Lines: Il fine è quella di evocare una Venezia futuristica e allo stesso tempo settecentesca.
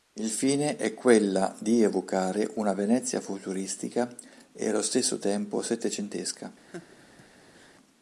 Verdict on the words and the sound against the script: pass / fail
fail